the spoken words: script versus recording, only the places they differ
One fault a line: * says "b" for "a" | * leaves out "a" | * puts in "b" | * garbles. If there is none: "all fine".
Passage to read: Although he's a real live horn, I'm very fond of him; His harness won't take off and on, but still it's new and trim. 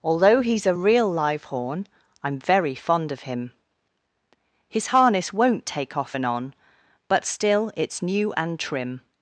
all fine